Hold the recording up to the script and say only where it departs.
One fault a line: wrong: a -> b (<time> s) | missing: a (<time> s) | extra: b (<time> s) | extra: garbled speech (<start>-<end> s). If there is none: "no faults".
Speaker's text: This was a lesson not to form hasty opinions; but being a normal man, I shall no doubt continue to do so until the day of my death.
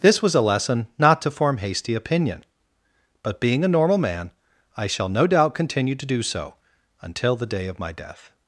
wrong: opinions -> opinion (1.9 s)